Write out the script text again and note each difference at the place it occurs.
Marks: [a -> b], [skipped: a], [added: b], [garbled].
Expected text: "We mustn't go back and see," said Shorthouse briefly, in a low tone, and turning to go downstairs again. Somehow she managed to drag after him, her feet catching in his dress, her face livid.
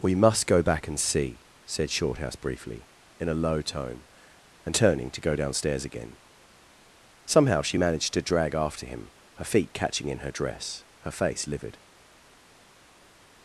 "We [mustn't -> must] go back and see," said Shorthouse briefly, in a low tone, and turning to go downstairs again. Somehow she managed to drag after him, her feet catching in [his -> her] dress, her face livid.